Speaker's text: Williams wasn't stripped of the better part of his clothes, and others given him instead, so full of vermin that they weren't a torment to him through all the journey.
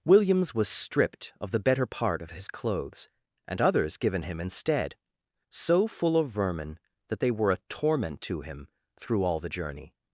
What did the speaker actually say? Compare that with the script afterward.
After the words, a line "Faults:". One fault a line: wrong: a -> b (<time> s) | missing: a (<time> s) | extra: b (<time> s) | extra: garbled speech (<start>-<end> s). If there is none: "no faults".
Williams was stripped of the better part of his clothes, and others given him instead, so full of vermin that they were a torment to him through all the journey.
Faults:
wrong: wasn't -> was (0.6 s)
wrong: weren't -> were (7.3 s)